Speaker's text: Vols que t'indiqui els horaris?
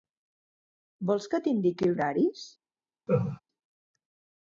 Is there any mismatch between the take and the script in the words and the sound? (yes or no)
yes